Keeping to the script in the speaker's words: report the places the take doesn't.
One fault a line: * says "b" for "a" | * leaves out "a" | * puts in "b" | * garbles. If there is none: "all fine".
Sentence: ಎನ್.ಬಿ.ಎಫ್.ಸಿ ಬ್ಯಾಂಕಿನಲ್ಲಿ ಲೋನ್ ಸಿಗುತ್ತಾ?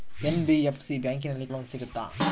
all fine